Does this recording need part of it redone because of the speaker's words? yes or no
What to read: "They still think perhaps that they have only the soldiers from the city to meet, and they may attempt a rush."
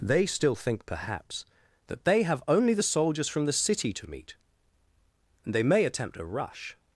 no